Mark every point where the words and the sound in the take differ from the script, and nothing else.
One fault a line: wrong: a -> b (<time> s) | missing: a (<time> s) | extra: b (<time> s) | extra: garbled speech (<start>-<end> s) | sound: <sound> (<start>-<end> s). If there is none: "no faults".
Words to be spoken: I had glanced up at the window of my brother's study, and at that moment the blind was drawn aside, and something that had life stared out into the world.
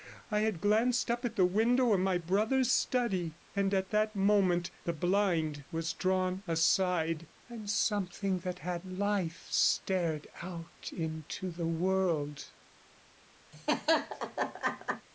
sound: laugh (13.5-15.1 s)